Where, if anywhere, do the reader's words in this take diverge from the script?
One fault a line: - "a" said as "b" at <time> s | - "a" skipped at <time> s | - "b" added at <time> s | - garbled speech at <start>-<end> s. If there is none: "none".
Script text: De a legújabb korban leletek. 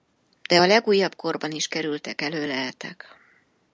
- "is kerültek elő" added at 1.5 s